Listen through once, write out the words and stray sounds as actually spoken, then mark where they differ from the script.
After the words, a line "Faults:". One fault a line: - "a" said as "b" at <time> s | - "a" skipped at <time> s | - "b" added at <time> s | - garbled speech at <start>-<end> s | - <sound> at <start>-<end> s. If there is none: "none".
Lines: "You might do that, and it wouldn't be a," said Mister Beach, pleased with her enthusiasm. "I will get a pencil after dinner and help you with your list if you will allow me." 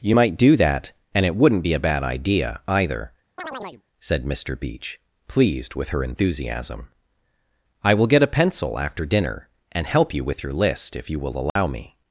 "You might do that, and it wouldn't be a bad idea, either," said Mister Beach, pleased with her enthusiasm. "I will get a pencil after dinner and help you with your list if you will allow me."
Faults:
- "bad idea either" added at 1.8 s
- chirp at 3.4-3.8 s
- dropout at 11.5-11.6 s